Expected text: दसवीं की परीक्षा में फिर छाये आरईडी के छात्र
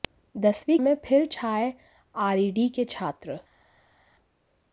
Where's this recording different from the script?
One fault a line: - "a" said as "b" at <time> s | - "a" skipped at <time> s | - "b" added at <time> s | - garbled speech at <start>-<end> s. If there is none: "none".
- "की परीक्षा" skipped at 0.8 s